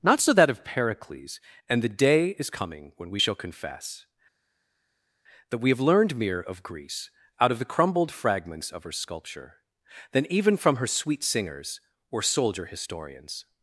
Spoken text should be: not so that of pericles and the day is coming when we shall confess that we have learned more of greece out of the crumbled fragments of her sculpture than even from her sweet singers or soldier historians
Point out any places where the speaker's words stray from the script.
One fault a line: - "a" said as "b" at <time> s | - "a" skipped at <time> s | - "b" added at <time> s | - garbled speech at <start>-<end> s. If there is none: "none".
- "more" said as "mere" at 6.2 s